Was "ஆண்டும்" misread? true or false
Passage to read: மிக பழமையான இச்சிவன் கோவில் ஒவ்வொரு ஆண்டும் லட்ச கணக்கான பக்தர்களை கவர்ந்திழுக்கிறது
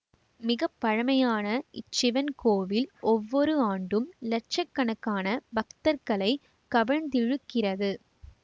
false